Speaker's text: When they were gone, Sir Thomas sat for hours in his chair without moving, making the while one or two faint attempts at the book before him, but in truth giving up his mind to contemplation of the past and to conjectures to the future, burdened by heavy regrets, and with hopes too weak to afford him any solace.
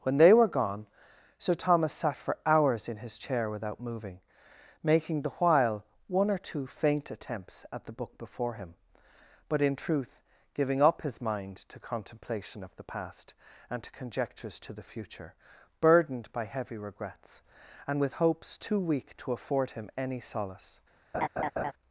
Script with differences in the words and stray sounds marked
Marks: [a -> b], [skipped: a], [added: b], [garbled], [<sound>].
When they were gone, Sir Thomas sat for hours in his chair without moving, making the while one or two faint attempts at the book before him, but in truth giving up his mind to contemplation of the past and to conjectures to the future, burdened by heavy regrets, and with hopes too weak to afford him any solace. [laugh]